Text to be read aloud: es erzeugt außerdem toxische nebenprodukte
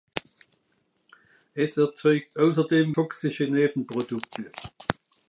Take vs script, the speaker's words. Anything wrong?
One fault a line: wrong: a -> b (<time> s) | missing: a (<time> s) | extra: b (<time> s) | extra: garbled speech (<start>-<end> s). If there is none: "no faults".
no faults